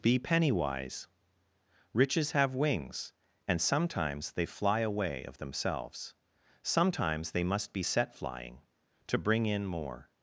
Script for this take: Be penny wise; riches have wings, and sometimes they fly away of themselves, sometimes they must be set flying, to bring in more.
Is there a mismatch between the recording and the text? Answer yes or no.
no